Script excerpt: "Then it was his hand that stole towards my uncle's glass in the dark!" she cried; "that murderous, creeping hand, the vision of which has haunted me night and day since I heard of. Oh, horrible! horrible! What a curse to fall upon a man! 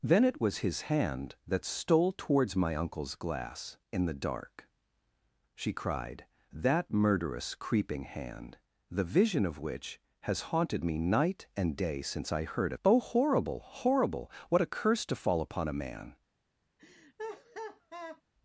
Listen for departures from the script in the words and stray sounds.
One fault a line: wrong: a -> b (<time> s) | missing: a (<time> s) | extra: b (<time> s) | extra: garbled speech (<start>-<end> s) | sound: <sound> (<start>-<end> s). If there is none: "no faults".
sound: laugh (16.8-18.2 s)